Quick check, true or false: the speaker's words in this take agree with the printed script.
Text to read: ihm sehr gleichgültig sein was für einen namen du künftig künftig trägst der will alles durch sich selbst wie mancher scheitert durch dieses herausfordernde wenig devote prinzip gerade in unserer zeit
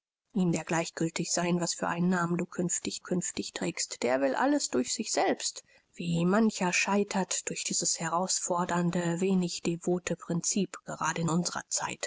true